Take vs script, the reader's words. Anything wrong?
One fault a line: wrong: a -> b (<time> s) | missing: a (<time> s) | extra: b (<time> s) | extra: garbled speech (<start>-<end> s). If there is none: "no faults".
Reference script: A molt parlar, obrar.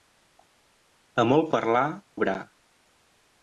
no faults